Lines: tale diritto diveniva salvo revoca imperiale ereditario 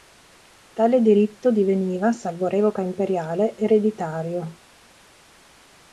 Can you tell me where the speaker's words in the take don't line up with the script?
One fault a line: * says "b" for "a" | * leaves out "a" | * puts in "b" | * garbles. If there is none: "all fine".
all fine